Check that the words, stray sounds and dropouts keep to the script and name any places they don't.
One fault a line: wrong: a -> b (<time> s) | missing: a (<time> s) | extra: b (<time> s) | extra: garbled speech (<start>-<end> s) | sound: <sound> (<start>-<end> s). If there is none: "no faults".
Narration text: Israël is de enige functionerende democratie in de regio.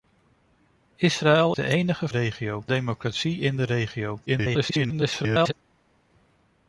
missing: is (1.6 s)
wrong: functionerende -> regio (2.1 s)
extra: garbled speech (4.3-5.5 s)